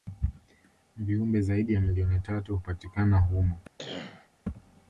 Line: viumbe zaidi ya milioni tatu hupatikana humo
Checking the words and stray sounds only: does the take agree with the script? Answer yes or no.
no